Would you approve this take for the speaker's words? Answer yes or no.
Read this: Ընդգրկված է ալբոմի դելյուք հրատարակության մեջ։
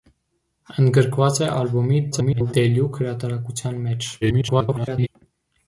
no